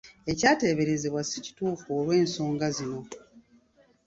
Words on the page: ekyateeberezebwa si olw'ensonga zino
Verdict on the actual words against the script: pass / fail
fail